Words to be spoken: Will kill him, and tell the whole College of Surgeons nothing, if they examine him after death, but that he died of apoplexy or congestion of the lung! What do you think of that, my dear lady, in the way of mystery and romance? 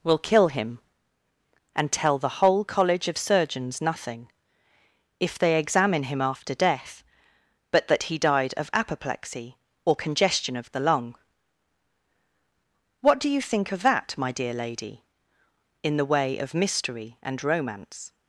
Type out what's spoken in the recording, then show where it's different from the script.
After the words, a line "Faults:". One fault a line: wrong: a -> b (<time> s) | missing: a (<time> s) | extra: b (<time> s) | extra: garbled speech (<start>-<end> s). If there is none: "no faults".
Will kill him, and tell the whole College of Surgeons nothing, if they examine him after death, but that he died of apoplexy or congestion of the lung! What do you think of that, my dear lady, in the way of mystery and romance?
Faults:
no faults